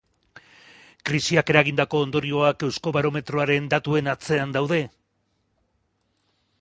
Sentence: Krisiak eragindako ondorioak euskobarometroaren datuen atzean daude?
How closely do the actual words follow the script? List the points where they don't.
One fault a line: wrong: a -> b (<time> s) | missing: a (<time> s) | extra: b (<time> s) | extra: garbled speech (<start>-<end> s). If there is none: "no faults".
no faults